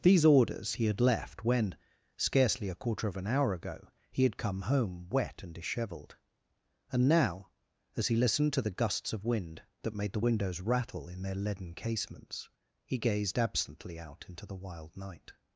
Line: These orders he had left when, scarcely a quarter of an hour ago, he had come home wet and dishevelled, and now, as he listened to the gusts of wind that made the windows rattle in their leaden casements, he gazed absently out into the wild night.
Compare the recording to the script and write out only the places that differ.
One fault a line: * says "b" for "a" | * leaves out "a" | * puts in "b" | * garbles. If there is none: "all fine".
all fine